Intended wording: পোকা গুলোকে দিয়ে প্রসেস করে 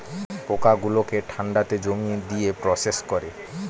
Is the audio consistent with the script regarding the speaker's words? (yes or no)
no